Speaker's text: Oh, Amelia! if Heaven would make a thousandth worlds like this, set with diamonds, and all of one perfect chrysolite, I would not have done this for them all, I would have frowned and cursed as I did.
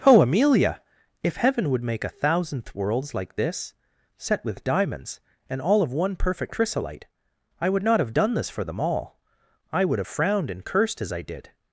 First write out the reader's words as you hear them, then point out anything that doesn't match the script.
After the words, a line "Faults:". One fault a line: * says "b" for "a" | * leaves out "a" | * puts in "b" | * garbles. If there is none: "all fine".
Oh, Amelia! if Heaven would make a thousandth worlds like this, set with diamonds, and all of one perfect chrysolite, I would not have done this for them all, I would have frowned and cursed as I did.
Faults:
all fine